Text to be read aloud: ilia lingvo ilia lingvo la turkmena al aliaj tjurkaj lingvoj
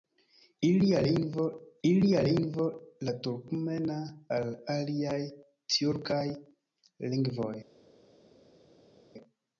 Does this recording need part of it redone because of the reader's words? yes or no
no